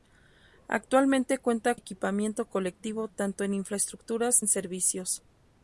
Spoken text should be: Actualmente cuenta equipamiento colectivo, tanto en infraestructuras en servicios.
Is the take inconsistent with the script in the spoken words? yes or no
no